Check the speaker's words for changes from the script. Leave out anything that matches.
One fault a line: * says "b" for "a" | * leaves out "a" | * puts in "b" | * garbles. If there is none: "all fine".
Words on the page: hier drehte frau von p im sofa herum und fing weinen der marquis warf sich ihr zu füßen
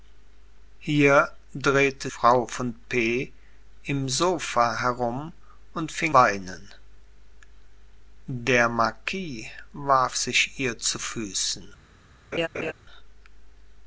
all fine